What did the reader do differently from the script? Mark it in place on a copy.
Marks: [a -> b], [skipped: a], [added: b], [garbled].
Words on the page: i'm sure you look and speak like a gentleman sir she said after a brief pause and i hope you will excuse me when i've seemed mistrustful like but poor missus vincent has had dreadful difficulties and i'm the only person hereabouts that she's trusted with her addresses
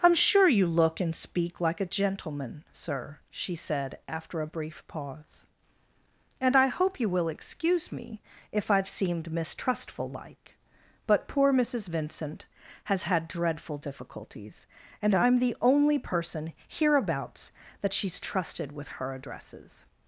i'm sure you look and speak like a gentleman sir she said after a brief pause and i hope you will excuse me [when -> if] i've seemed mistrustful like but poor missus vincent has had dreadful difficulties and i'm the only person hereabouts that she's trusted with her addresses